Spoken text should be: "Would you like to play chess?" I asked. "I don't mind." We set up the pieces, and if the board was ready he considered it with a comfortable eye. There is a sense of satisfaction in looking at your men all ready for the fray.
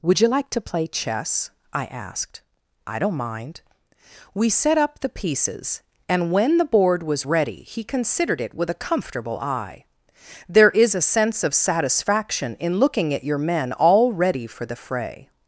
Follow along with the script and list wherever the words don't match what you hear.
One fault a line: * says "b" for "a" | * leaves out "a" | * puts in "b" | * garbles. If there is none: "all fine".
* says "when" for "if"